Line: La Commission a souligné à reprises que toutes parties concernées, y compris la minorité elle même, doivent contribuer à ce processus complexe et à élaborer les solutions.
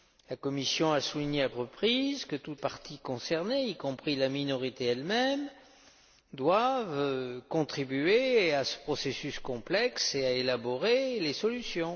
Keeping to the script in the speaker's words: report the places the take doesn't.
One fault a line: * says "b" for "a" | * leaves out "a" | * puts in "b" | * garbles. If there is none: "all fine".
all fine